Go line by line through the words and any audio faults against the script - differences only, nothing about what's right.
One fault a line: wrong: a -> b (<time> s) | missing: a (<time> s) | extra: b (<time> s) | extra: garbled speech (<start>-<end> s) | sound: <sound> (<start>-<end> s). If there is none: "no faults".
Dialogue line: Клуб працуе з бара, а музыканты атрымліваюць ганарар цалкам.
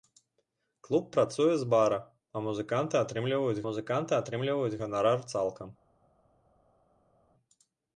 extra: музыканты атрымліваюць (3.7 s)